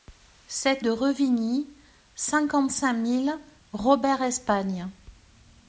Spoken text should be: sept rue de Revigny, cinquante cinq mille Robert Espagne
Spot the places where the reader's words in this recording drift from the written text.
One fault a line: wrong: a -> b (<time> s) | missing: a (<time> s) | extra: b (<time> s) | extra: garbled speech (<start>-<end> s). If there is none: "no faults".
missing: rue (0.8 s)